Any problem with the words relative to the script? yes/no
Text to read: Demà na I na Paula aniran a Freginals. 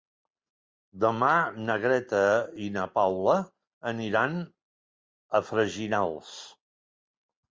yes